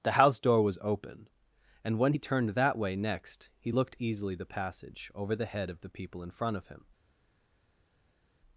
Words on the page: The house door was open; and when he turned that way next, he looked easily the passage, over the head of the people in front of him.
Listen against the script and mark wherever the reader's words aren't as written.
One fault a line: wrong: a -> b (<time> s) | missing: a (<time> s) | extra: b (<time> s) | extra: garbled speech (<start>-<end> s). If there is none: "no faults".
no faults